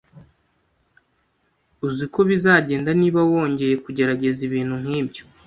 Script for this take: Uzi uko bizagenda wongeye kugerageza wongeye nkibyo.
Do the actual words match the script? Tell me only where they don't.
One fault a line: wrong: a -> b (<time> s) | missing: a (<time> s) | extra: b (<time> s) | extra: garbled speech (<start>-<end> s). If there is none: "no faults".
extra: niba (3.0 s)
wrong: wongeye -> ibintu (4.5 s)